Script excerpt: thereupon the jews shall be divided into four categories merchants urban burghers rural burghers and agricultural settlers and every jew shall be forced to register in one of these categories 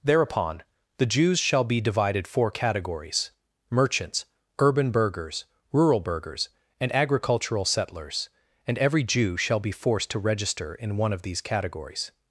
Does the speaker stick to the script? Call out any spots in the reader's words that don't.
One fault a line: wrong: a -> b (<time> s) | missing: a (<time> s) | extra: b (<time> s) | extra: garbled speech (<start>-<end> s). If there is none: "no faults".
missing: into (2.3 s)